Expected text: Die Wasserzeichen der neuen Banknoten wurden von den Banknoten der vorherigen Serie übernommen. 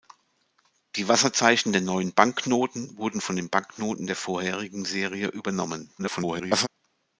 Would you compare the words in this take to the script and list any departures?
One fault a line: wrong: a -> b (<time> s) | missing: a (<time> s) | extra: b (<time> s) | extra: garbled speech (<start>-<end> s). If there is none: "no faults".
extra: garbled speech (6.0-6.7 s)